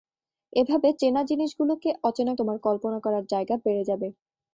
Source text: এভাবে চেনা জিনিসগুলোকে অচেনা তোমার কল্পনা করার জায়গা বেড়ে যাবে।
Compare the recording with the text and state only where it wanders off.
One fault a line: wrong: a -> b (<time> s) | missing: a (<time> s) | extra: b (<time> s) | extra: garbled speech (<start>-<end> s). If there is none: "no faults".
no faults